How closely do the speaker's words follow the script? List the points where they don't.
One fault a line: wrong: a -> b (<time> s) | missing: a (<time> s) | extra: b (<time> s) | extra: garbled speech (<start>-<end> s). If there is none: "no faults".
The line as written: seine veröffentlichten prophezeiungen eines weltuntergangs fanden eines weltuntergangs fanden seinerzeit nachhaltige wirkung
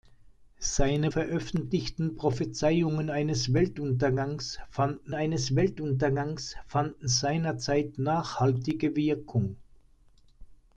no faults